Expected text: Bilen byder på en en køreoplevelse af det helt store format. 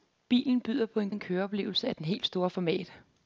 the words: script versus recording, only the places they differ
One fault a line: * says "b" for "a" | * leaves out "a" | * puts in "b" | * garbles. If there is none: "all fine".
all fine